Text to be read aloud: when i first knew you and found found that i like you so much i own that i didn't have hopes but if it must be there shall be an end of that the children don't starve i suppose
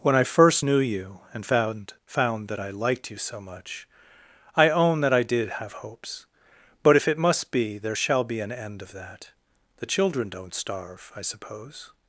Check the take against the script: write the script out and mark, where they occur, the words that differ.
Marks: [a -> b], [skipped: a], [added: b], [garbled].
when i first knew you and found found that i [like -> liked] you so much i own that i [didn't -> did] have hopes but if it must be there shall be an end of that the children don't starve i suppose